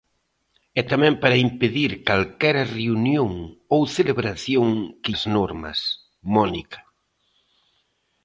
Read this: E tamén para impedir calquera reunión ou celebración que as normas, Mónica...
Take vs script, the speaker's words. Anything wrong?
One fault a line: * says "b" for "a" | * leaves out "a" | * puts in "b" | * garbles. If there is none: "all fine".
all fine